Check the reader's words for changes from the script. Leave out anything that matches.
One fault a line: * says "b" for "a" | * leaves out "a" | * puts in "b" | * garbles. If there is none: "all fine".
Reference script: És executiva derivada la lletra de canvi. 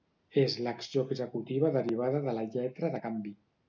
* puts in "l'acció"
* puts in "de"